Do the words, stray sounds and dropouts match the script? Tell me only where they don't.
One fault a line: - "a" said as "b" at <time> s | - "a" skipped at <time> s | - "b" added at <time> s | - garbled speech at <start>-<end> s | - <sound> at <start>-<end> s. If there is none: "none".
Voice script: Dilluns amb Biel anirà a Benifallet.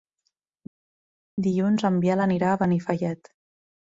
- "amb" said as "en" at 1.9 s